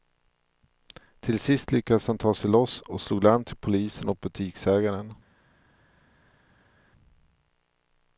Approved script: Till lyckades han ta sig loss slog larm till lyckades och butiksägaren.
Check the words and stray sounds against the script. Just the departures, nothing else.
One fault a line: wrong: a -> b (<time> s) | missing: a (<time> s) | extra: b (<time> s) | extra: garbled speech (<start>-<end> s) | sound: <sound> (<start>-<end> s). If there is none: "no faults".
extra: sist (1.4 s)
extra: och (2.8 s)
wrong: lyckades -> polisen (3.5 s)